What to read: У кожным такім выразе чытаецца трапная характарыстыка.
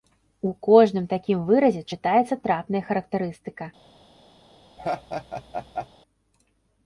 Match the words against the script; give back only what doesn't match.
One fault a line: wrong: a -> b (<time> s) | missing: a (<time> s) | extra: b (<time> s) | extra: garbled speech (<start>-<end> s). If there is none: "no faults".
no faults